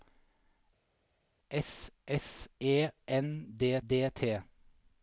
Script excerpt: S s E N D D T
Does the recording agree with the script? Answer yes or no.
yes